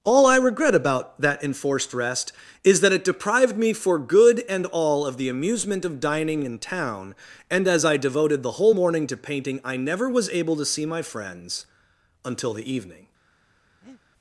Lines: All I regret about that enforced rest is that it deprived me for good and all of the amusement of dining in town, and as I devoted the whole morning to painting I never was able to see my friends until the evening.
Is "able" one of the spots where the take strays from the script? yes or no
no